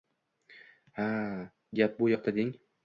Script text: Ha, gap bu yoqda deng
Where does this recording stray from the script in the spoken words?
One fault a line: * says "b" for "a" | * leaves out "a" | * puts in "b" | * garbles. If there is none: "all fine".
all fine